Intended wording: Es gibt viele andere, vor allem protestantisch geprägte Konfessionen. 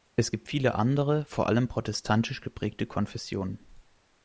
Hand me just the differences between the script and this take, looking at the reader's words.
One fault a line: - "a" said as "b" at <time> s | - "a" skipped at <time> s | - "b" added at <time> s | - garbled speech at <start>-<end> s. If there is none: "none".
none